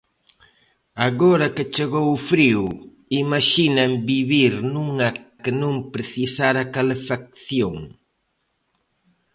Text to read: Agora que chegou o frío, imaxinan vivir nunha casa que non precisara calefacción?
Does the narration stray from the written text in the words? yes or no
yes